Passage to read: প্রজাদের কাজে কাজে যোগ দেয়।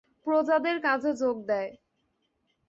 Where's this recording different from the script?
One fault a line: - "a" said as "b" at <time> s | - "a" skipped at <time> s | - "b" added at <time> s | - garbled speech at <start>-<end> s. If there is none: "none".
- "কাজে" skipped at 1.1 s